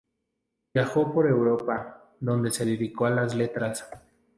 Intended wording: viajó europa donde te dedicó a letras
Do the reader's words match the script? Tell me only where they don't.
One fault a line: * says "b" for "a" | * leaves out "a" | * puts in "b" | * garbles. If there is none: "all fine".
* puts in "por"
* says "se" for "te"
* puts in "las"